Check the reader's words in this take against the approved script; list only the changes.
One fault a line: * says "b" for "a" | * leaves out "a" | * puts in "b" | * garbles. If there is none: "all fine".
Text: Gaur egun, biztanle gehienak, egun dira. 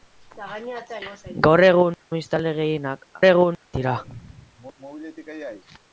all fine